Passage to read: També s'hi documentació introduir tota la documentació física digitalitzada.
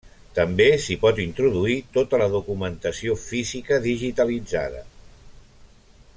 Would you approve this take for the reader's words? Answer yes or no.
no